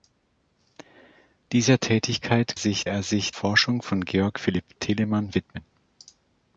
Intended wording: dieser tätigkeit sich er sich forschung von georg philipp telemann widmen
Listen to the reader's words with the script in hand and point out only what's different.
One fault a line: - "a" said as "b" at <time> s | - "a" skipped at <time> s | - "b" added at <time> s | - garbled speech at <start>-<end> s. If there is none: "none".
none